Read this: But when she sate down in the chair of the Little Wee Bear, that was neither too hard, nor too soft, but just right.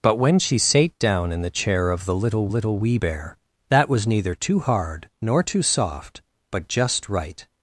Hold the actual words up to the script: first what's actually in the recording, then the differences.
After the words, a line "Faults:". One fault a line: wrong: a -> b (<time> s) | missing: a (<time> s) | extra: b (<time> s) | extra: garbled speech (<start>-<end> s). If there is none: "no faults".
But when she sate down in the chair of the Little Little Wee Bear, that was neither too hard, nor too soft, but just right.
Faults:
extra: Little (2.5 s)